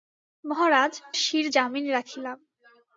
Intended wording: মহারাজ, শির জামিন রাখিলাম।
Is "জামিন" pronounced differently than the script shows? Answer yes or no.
no